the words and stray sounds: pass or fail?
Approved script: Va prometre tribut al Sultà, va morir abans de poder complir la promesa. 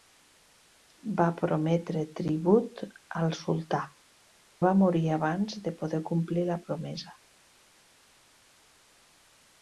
pass